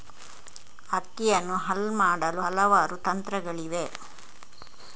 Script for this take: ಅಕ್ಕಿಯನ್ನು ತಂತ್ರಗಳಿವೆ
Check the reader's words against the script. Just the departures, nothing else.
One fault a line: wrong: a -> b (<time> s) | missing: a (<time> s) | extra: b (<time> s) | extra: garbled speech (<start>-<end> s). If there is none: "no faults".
extra: ಹಲ್ ಮಾಡಲು ಹಲವಾರು (1.6 s)